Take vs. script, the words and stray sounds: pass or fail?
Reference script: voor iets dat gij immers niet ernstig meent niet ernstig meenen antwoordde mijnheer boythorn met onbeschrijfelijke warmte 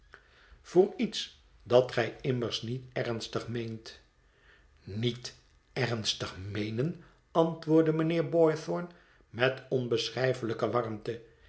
pass